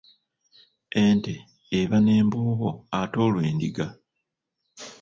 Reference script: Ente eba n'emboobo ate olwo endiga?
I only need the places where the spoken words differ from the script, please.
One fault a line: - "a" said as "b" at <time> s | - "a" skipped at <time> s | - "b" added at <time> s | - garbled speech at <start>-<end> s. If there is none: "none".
none